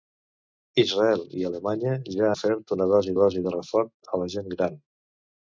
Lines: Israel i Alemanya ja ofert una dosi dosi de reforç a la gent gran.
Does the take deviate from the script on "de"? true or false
false